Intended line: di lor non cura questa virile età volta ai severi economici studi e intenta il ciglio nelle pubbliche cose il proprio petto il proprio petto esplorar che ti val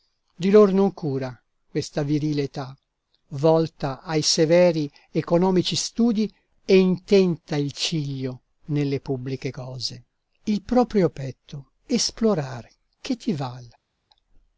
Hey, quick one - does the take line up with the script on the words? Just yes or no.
no